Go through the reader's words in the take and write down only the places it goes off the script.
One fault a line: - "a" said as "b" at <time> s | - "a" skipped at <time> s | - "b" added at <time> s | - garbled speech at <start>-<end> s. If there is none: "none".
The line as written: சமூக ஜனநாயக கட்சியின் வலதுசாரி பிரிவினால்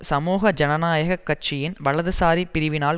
none